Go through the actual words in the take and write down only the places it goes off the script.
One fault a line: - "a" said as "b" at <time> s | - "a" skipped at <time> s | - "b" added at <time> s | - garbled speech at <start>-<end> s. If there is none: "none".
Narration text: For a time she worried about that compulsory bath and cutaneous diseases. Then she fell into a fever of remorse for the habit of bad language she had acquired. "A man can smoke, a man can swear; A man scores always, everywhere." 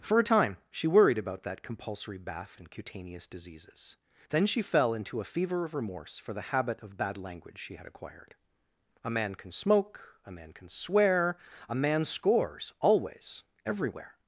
none